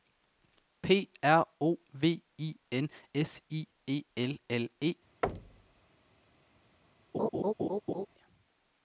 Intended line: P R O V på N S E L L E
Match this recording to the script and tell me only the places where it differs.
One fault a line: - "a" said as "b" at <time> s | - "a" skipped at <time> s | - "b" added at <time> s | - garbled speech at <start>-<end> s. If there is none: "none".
- "på" said as "I" at 2.4 s
- "I" added at 3.5 s